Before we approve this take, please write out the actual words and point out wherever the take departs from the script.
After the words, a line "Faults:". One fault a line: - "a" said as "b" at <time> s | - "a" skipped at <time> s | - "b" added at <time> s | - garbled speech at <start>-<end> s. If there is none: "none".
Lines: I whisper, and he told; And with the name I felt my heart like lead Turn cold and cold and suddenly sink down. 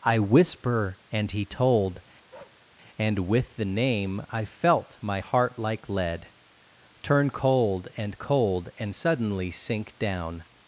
I whisper, and he told; And with the name I felt my heart like lead Turn cold and cold and suddenly sink down.
Faults:
none